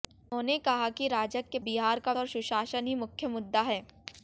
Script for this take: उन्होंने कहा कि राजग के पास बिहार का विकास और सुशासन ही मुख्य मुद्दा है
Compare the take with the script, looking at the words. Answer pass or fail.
fail